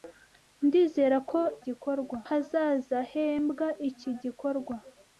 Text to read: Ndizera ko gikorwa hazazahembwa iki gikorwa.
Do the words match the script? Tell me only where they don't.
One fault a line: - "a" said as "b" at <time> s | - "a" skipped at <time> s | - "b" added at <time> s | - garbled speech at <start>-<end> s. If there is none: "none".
none